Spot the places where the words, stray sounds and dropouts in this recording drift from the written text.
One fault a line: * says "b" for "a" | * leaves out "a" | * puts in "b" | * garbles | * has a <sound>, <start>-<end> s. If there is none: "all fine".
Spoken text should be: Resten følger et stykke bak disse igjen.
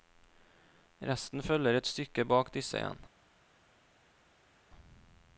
all fine